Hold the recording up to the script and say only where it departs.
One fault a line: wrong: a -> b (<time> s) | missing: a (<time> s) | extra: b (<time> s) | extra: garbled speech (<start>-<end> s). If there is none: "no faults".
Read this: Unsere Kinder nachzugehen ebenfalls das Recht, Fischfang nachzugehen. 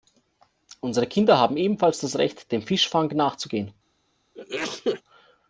wrong: nachzugehen -> haben (1.4 s)
extra: dem (2.5 s)